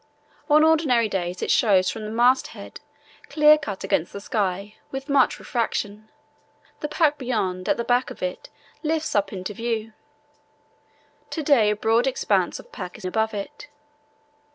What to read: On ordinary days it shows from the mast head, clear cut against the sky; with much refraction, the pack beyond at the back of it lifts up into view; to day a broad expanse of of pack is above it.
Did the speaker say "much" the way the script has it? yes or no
yes